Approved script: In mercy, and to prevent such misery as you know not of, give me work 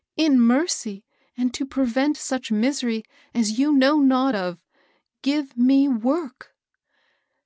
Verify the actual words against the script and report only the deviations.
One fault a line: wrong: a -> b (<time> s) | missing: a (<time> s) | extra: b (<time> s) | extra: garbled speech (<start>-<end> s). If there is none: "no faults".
no faults